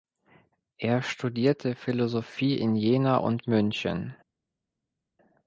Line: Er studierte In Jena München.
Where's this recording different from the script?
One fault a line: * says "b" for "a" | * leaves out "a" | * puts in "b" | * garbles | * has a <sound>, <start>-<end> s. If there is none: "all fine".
* puts in "Philosophie"
* puts in "und"